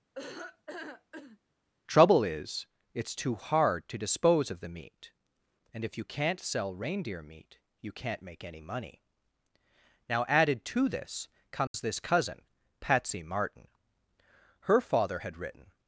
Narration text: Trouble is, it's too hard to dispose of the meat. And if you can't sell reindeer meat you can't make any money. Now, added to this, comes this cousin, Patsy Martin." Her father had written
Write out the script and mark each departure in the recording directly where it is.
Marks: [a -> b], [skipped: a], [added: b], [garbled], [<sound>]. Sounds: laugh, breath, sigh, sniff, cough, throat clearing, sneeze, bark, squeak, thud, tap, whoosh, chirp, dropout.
[laugh] Trouble is, it's too hard to dispose of the meat. And if you can't sell reindeer meat you can't make any money. Now, added to this, comes [dropout] this cousin, Patsy Martin." Her father had written